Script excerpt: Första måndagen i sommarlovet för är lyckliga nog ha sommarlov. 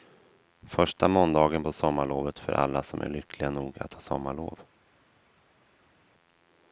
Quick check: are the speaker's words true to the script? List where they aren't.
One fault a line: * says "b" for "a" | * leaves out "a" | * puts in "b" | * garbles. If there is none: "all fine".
* says "på" for "i"
* puts in "alla som"
* puts in "att"